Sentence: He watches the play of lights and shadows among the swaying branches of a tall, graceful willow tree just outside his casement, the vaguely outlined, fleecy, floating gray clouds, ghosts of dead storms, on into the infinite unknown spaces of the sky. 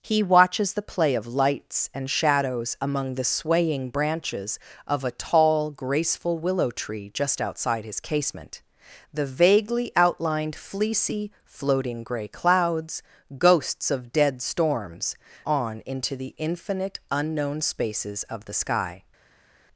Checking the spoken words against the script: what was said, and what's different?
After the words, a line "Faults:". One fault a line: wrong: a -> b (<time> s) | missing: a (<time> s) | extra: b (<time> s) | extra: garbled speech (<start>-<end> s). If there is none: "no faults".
He watches the play of lights and shadows among the swaying branches of a tall, graceful willow tree just outside his casement, the vaguely outlined, fleecy, floating gray clouds, ghosts of dead storms, on into the infinite unknown spaces of the sky.
Faults:
no faults